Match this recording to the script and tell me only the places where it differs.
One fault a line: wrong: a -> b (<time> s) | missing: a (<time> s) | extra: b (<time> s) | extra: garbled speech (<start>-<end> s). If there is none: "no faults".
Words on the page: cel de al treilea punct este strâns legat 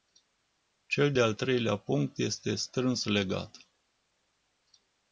no faults